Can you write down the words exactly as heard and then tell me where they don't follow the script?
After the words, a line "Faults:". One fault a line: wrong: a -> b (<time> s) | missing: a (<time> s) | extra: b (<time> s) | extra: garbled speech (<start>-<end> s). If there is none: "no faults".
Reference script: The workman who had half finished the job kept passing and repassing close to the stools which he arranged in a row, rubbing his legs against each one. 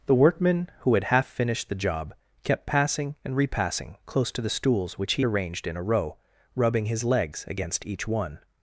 The workman who had half finished the job kept passing and repassing close to the stools which he arranged in a row, rubbing his legs against each one.
Faults:
no faults